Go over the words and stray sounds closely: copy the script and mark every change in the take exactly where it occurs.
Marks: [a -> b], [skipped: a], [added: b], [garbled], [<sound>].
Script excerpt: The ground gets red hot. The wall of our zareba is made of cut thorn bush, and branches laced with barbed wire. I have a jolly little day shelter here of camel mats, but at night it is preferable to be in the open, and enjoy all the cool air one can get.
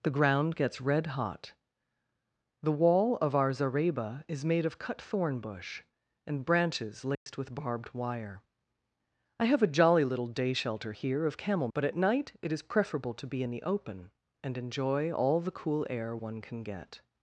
The ground gets red hot. The wall of our zareba is made of cut thorn bush, and branches laced [dropout] with barbed wire. I have a jolly little day shelter here of camel [skipped: mats,] but at night it is preferable to be in the open, and enjoy all the cool air one can get.